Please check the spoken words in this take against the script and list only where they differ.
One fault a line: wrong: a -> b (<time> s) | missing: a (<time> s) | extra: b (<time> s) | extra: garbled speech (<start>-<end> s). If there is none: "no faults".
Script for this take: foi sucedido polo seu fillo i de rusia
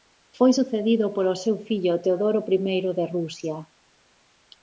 extra: teodoro (2.0 s)